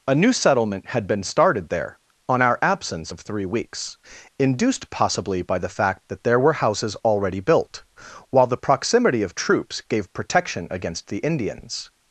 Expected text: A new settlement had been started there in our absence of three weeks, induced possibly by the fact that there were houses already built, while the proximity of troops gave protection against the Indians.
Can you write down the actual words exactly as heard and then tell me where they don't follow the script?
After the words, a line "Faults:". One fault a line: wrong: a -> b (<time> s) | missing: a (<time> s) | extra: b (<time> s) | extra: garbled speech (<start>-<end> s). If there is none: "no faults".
A new settlement had been started there on our absence of three weeks, induced possibly by the fact that there were houses already built, while the proximity of troops gave protection against the Indians.
Faults:
wrong: in -> on (2.3 s)